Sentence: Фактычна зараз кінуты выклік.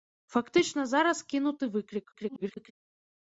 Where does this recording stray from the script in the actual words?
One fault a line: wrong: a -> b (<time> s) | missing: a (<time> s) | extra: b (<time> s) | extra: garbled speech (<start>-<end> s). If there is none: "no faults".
extra: garbled speech (2.1-2.7 s)